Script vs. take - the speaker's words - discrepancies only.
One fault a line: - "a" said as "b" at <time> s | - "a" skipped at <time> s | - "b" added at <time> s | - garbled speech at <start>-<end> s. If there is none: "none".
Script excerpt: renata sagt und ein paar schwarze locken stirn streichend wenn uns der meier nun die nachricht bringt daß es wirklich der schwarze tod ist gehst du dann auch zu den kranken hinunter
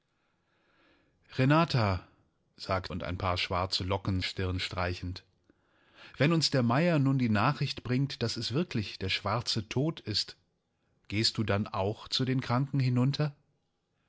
none